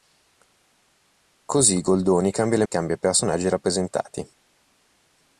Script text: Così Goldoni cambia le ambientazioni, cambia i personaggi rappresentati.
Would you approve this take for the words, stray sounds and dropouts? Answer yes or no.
no